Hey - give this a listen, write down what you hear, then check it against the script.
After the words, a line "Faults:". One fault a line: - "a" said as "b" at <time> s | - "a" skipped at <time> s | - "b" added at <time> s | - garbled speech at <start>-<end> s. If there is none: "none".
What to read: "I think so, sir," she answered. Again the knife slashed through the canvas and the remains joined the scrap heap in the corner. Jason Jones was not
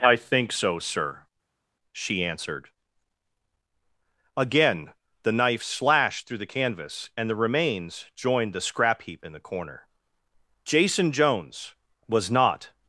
"I think so, sir," she answered. Again the knife slashed through the canvas and the remains joined the scrap heap in the corner. Jason Jones was not
Faults:
none